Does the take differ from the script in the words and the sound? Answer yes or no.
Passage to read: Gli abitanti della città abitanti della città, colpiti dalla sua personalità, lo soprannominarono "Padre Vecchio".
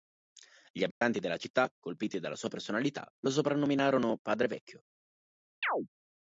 yes